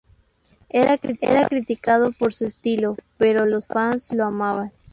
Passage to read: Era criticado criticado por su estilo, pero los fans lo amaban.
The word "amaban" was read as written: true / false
true